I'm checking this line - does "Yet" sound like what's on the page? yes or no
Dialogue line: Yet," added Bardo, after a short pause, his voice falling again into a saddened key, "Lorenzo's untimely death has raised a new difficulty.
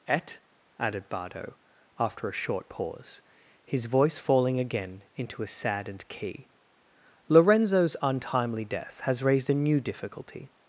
no